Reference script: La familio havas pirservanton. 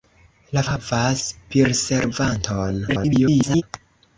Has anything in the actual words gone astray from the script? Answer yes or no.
yes